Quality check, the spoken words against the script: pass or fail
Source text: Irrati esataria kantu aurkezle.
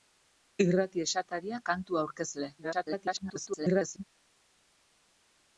fail